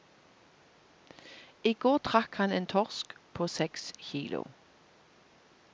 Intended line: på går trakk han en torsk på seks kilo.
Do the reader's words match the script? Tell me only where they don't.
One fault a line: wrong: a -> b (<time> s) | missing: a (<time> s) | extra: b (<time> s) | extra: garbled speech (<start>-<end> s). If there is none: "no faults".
wrong: på -> I (1.6 s)